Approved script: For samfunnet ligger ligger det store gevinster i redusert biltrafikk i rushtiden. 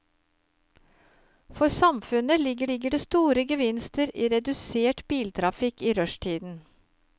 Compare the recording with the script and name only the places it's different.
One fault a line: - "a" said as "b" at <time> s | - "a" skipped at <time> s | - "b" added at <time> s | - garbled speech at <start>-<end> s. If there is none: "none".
none